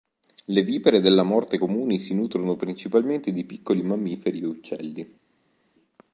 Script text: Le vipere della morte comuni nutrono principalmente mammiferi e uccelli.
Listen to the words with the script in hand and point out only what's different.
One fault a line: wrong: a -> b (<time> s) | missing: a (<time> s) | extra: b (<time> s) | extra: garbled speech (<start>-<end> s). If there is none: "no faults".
extra: si (2.0 s)
extra: di piccoli (3.3 s)